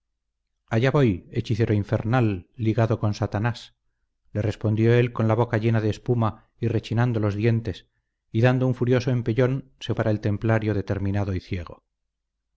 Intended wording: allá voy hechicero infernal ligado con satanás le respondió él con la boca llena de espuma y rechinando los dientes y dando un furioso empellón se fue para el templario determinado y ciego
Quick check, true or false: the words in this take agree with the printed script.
false